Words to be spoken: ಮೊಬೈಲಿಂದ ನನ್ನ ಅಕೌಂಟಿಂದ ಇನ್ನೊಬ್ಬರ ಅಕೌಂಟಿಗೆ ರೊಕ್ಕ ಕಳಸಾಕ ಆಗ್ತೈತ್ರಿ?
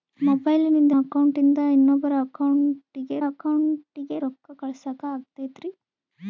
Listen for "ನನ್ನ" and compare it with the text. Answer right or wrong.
wrong